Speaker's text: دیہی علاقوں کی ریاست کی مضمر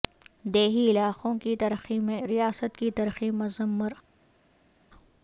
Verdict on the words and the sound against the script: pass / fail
fail